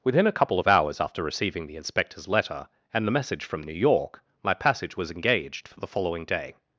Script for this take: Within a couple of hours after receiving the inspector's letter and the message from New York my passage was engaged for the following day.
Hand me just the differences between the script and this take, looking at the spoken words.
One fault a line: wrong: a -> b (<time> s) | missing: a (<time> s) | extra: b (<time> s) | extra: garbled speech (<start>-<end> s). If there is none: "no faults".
no faults